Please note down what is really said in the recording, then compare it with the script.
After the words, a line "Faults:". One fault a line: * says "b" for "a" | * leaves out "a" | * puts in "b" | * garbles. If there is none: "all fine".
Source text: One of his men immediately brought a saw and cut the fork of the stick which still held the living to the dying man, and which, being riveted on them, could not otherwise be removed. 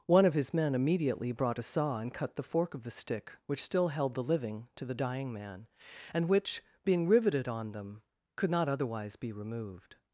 One of his men immediately brought a saw and cut the fork of the stick which still held the living to the dying man, and which, being riveted on them, could not otherwise be removed.
Faults:
all fine